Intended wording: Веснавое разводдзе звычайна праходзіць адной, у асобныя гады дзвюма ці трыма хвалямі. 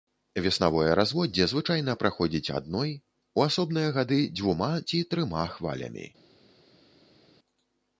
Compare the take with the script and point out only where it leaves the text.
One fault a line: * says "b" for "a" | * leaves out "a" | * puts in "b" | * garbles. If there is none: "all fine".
all fine